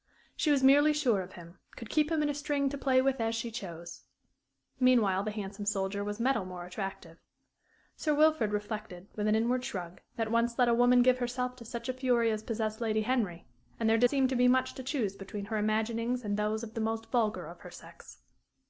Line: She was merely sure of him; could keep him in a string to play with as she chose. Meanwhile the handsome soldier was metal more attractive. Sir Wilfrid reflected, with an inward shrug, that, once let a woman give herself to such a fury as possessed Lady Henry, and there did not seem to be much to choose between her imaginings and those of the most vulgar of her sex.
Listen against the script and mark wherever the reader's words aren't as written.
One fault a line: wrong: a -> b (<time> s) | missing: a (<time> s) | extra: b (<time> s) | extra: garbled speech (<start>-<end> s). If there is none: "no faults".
missing: not (14.1 s)